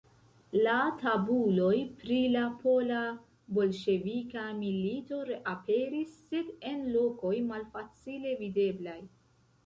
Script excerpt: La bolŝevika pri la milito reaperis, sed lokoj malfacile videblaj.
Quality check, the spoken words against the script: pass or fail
fail